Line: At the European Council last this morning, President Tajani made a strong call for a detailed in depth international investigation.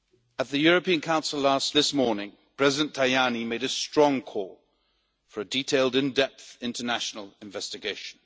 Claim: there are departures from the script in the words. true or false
false